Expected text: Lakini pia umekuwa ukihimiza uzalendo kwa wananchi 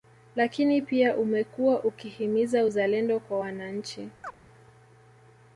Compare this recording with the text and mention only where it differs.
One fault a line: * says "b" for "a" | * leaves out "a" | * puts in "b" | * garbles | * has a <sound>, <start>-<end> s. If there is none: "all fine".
* has a chirp, 4.2-4.4 s